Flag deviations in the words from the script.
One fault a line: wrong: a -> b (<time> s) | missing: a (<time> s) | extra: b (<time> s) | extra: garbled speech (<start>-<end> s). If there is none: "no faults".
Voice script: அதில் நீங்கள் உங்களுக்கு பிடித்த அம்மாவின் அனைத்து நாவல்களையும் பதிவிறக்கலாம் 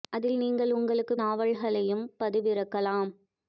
missing: பிடித்த அம்மாவின் அனைத்து (1.1 s)